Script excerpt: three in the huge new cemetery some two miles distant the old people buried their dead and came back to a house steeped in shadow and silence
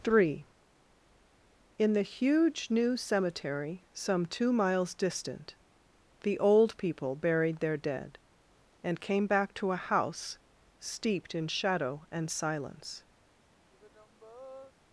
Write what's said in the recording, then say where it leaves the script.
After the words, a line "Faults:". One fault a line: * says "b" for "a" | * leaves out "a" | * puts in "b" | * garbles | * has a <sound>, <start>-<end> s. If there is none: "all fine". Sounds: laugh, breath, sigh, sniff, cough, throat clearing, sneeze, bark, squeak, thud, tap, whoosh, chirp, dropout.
three in the huge new cemetery some two miles distant the old people buried their dead and came back to a house steeped in shadow and silence
Faults:
* has a sigh, 13.7-14.7 s